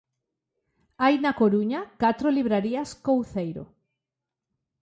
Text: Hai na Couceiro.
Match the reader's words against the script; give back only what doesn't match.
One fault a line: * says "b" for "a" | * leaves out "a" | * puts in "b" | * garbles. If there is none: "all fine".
* puts in "Coruña catro librarías"